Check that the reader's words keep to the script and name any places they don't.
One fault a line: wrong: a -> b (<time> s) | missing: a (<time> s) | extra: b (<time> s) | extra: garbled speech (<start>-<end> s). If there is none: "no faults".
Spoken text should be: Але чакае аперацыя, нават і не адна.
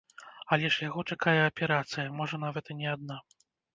extra: ж яго (0.8 s)
extra: можа (2.2 s)